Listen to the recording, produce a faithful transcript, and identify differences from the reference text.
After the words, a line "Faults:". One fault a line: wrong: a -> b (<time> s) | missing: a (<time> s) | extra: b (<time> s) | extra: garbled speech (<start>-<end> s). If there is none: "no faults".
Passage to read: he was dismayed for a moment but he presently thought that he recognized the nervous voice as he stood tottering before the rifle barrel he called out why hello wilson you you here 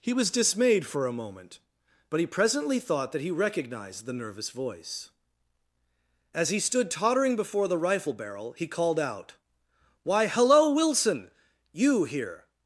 he was dismayed for a moment but he presently thought that he recognized the nervous voice as he stood tottering before the rifle barrel he called out why hello wilson you here
Faults:
missing: you (12.0 s)